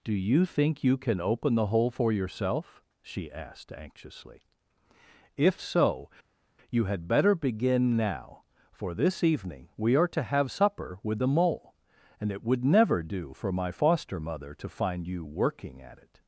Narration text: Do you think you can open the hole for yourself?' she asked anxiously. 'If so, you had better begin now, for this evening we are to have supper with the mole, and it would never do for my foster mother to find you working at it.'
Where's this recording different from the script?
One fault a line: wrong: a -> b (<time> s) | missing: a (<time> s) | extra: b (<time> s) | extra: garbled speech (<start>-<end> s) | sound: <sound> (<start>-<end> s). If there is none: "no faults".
no faults